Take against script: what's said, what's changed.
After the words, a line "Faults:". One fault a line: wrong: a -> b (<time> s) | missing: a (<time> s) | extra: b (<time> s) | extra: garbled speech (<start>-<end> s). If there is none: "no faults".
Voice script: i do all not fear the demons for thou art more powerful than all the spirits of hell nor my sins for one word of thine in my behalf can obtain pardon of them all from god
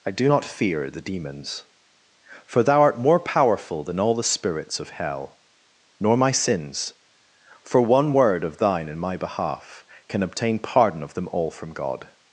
i do not fear the demons for thou art more powerful than all the spirits of hell nor my sins for one word of thine in my behalf can obtain pardon of them all from god
Faults:
missing: all (0.3 s)